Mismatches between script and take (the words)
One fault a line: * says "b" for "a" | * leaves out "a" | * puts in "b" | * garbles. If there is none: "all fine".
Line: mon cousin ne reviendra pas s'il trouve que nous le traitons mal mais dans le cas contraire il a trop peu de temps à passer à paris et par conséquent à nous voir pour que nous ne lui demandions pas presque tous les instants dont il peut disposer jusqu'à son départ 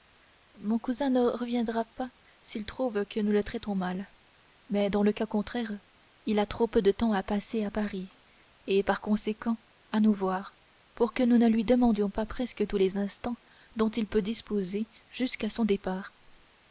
all fine